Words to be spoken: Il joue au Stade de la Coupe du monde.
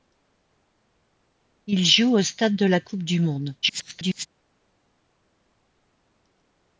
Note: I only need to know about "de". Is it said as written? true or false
true